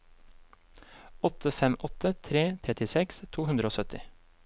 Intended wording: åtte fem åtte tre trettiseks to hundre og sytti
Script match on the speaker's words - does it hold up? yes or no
yes